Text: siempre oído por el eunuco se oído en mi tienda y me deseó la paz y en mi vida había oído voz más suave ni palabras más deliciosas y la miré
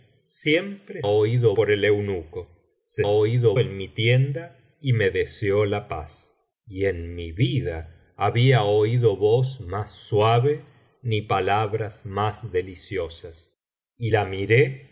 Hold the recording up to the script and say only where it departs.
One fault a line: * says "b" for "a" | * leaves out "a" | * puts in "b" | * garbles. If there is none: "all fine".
all fine